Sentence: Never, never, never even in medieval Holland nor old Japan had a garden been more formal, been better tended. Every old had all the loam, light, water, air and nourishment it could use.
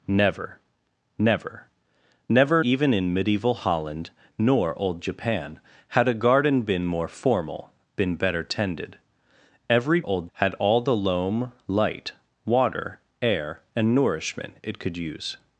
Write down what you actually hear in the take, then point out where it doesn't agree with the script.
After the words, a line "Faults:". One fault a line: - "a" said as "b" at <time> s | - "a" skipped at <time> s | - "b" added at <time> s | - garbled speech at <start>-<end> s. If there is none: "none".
Never, never, never even in medieval Holland nor old Japan had a garden been more formal, been better tended. Every old had all the loam, light, water, air and nourishment it could use.
Faults:
none